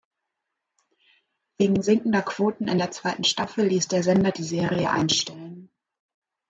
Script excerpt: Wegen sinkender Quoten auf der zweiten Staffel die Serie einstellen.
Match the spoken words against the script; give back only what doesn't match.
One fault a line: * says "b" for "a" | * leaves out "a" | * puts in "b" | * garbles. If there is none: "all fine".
* says "in" for "auf"
* puts in "ließ der Sender"